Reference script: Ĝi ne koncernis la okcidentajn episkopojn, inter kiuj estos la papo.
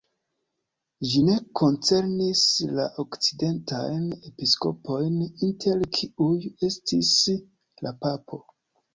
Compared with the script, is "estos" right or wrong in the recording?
wrong